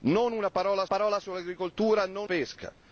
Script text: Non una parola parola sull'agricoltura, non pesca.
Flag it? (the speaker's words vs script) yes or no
no